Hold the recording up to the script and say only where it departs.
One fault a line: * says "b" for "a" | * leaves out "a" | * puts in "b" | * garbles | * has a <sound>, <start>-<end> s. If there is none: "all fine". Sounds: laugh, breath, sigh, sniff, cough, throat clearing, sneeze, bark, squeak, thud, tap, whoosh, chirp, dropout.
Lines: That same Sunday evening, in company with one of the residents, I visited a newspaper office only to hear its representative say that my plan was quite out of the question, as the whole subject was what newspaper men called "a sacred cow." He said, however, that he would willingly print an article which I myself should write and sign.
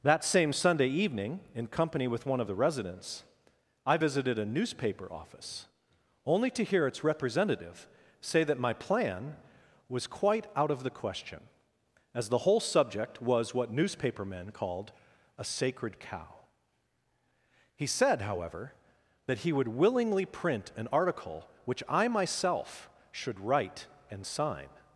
all fine